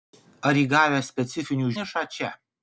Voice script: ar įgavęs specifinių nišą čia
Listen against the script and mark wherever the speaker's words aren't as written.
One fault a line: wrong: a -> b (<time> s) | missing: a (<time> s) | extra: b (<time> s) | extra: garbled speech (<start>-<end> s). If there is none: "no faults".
no faults